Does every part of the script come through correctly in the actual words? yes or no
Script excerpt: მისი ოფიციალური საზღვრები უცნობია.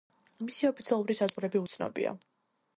yes